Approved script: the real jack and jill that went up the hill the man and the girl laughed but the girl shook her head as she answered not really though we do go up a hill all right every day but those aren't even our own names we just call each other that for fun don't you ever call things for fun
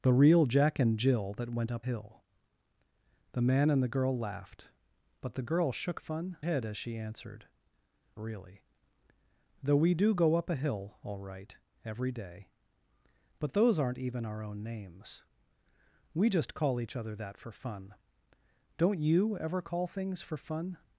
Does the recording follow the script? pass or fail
fail